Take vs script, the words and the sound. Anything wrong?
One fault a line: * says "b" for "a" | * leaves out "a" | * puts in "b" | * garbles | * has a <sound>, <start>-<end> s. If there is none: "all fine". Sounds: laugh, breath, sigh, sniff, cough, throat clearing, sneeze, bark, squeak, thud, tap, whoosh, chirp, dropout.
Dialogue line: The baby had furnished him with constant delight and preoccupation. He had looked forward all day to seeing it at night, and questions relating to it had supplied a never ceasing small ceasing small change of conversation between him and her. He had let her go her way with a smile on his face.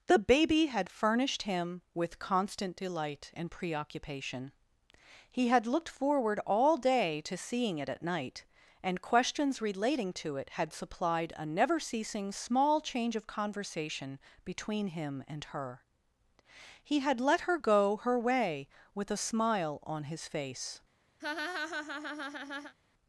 * leaves out "ceasing small"
* has a laugh, 21.2-22.7 s